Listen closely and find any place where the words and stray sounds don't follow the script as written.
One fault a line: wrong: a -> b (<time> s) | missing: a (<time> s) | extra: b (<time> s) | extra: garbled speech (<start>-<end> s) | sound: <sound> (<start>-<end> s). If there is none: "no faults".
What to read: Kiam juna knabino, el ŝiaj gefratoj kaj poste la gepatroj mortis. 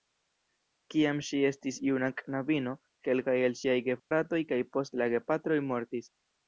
extra: ŝi estis (1.3 s)
extra: kelkaj (3.1 s)
sound: dropout (4.0-4.1 s)